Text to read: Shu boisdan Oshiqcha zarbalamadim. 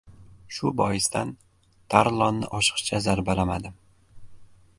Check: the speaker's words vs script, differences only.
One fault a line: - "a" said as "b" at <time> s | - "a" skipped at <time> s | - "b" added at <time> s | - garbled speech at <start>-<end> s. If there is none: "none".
- "Tarlonni" added at 1.9 s